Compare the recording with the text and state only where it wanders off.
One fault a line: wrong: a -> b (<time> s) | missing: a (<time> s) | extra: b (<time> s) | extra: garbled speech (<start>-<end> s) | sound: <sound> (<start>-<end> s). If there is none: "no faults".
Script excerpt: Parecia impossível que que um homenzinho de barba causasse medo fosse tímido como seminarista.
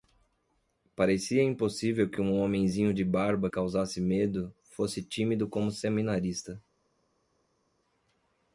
no faults